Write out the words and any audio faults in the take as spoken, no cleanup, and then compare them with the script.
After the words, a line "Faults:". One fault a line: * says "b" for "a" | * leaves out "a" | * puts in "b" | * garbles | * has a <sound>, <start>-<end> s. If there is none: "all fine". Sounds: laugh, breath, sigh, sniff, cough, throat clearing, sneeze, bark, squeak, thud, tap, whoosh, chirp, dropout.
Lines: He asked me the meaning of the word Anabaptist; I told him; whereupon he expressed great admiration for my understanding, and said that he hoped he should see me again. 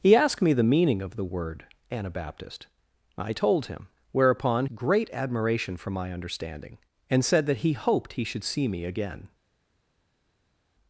He asked me the meaning of the word Anabaptist; I told him; whereupon great admiration for my understanding, and said that he hoped he should see me again.
Faults:
* leaves out "he expressed"